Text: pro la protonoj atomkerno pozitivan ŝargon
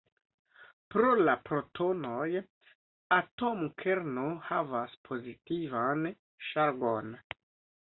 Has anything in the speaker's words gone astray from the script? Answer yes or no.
yes